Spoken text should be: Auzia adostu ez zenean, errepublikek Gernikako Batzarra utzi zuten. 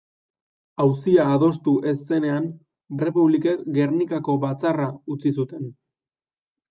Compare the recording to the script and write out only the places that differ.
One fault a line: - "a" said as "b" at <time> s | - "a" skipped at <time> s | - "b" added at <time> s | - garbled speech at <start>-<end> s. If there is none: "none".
none